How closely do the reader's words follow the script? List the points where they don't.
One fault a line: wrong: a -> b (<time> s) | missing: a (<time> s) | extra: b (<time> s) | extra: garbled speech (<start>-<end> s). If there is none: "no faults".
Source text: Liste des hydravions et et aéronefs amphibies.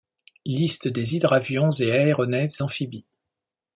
missing: et (1.9 s)